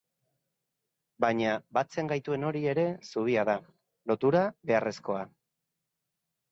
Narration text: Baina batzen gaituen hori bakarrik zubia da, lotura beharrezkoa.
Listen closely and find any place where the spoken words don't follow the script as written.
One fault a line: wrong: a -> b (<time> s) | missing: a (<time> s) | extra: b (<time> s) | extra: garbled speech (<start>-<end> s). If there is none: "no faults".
wrong: bakarrik -> ere (2.7 s)